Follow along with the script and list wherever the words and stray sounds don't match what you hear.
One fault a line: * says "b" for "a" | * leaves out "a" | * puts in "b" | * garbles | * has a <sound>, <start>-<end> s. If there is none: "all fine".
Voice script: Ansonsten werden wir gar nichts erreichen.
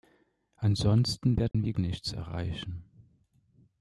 * has a dropout, 1.5-1.5 s
* leaves out "gar"